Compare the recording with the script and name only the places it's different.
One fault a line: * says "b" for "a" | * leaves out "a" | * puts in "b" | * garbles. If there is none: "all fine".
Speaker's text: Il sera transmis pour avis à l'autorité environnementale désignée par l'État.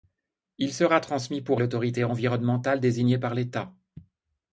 * leaves out "avis"